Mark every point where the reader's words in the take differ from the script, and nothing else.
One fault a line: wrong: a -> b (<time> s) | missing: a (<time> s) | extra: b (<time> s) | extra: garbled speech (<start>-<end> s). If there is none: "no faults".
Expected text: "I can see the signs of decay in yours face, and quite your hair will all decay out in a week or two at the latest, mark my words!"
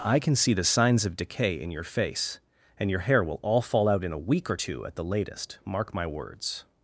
wrong: yours -> your (1.7 s)
missing: quite (2.9 s)
wrong: decay -> fall (3.6 s)